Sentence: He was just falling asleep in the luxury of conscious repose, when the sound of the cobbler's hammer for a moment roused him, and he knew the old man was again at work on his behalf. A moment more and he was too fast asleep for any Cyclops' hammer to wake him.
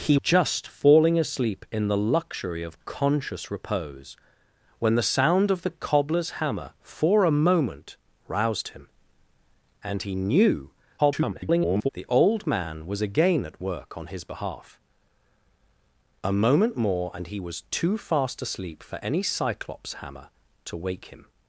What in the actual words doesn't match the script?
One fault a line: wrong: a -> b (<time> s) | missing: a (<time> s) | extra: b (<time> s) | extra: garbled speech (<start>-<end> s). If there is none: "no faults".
missing: was (0.2 s)
extra: garbled speech (11.0-11.9 s)